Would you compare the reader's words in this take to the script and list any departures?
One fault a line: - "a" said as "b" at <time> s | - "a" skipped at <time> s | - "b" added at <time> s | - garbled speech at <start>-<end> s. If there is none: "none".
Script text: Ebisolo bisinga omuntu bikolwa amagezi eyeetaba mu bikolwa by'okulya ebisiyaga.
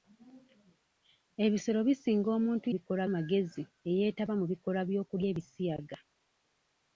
none